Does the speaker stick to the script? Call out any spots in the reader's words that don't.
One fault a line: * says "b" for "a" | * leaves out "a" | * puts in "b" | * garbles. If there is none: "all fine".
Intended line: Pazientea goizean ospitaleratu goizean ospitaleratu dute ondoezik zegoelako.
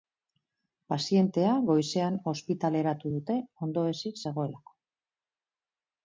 * leaves out "goizean ospitaleratu"